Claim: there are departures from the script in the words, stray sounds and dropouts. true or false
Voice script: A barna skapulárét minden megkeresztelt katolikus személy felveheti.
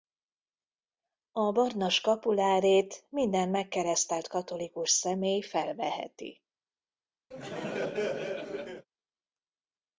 true